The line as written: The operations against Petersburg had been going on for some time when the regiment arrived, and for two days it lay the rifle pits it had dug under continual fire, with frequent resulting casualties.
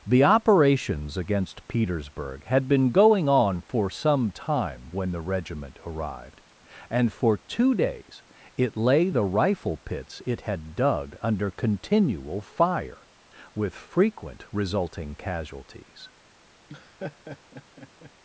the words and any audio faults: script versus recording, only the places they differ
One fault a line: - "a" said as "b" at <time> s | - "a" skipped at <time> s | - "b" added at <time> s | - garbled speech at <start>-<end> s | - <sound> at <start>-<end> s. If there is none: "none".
- laugh at 16.7-18.1 s